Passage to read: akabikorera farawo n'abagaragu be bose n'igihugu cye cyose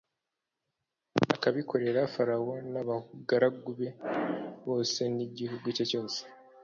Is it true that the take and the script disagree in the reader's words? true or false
false